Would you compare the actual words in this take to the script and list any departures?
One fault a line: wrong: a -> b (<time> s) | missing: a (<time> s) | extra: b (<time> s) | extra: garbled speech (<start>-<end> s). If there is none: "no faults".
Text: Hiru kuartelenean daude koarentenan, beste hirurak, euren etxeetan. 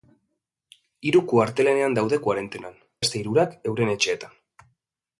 no faults